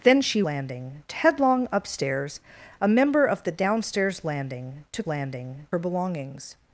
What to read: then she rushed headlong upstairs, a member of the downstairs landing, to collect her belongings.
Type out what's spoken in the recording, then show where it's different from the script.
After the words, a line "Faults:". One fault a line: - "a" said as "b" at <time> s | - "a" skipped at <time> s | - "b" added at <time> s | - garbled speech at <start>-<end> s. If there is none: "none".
then she landing headlong upstairs, a member of the downstairs landing, to landing her belongings.
Faults:
- "rushed" said as "landing" at 0.4 s
- "collect" said as "landing" at 5.1 s